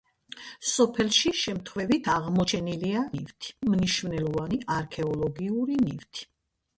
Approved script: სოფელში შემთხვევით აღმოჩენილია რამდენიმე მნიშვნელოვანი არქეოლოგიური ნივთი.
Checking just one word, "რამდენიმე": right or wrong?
wrong